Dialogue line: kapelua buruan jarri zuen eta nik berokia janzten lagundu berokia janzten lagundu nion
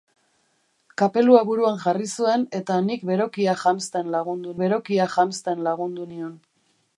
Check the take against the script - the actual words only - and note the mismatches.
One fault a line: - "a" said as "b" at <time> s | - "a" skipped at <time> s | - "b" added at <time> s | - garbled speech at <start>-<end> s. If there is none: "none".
none